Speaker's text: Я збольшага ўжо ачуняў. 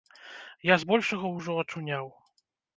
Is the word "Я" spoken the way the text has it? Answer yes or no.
yes